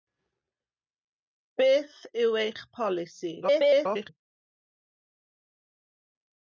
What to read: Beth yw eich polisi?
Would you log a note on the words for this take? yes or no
yes